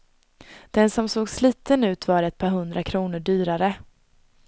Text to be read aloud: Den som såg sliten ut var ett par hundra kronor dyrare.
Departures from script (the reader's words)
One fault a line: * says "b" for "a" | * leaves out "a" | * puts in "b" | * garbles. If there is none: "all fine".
all fine